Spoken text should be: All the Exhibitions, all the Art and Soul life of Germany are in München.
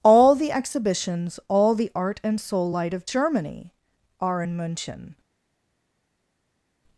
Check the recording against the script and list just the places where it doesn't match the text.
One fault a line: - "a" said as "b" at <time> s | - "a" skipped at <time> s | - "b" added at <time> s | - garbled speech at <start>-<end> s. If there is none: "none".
- "life" said as "light" at 2.7 s